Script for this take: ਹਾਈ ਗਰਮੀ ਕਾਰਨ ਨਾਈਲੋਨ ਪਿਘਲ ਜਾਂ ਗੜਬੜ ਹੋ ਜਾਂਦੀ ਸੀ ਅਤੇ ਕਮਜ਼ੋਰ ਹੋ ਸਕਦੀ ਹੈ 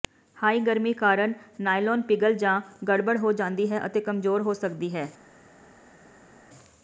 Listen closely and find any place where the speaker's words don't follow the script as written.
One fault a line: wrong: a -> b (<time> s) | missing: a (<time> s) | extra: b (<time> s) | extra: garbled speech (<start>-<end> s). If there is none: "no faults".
wrong: ਸੀ -> ਹੈ (3.7 s)